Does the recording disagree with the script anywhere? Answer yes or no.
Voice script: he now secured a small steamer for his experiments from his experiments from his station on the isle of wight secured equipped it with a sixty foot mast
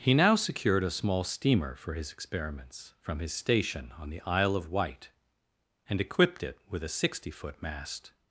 yes